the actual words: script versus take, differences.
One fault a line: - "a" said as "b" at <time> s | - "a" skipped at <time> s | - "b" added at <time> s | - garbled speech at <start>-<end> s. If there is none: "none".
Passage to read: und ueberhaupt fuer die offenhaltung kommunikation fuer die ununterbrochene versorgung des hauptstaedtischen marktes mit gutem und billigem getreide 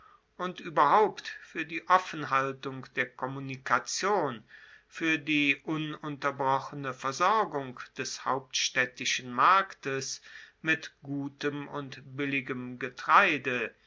- "der" added at 2.9 s